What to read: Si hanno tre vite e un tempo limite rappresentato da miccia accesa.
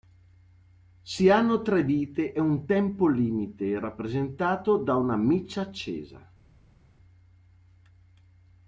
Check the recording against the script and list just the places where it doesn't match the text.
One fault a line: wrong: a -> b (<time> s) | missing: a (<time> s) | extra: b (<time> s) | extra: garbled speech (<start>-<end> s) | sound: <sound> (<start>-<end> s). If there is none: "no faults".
extra: una (5.0 s)